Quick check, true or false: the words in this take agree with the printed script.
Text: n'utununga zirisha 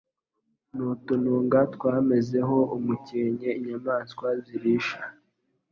false